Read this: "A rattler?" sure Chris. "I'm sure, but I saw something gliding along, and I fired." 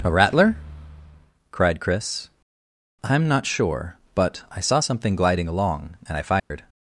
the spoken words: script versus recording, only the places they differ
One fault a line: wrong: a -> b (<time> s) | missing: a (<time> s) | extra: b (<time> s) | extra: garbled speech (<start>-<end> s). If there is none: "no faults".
wrong: sure -> cried (1.5 s)
extra: not (3.3 s)